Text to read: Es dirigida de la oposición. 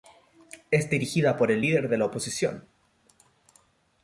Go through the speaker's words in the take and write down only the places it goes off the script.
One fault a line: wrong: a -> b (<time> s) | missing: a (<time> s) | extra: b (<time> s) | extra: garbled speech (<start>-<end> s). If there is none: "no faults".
extra: por el líder (1.4 s)